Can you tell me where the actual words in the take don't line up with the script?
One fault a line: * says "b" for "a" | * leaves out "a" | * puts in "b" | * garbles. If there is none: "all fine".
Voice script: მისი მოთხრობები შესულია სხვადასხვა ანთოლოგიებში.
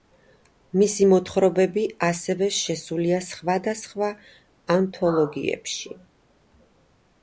* puts in "ასევე"